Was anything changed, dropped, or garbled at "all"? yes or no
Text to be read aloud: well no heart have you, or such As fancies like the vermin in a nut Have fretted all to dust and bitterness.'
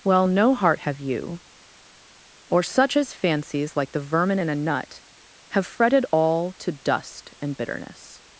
no